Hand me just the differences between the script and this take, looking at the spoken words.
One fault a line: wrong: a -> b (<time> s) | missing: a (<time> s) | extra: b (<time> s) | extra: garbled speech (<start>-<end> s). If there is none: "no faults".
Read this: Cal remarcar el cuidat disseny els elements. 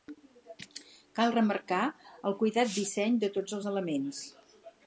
extra: de tots (3.2 s)